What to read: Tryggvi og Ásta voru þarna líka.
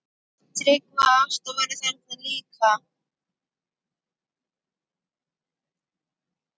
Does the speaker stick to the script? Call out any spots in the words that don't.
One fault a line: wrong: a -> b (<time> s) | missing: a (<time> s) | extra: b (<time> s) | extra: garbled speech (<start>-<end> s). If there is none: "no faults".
no faults